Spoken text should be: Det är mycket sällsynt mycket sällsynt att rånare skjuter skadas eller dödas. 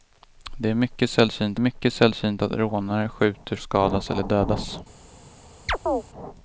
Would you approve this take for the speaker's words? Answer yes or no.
yes